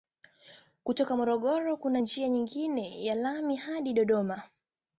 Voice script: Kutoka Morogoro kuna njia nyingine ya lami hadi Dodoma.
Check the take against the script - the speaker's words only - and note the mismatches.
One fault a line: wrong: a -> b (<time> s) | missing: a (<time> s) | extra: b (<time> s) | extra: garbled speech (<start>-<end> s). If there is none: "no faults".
no faults